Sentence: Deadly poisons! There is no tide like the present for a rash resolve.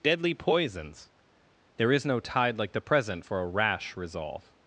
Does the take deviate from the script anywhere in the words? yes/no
no